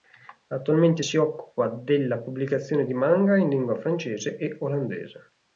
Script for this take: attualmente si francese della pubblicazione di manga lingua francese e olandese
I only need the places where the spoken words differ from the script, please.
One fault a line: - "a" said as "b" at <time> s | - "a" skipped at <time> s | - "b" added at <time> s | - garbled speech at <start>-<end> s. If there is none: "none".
- "francese" said as "occupa" at 1.2 s
- "in" added at 3.4 s